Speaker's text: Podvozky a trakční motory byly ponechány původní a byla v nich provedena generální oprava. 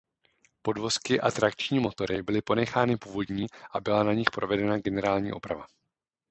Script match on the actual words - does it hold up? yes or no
no